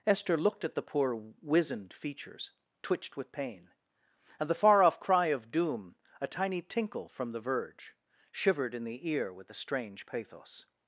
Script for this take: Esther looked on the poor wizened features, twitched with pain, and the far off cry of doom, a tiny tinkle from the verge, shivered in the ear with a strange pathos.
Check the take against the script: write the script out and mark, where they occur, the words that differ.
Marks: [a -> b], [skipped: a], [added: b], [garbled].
Esther looked [on -> at] the poor wizened features, twitched with pain, and the far off cry of doom, a tiny tinkle from the verge, shivered in the ear with a strange pathos.